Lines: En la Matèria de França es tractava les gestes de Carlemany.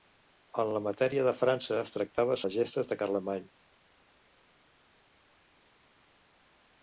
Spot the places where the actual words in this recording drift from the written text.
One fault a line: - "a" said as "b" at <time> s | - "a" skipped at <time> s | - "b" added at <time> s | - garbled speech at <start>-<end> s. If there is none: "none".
none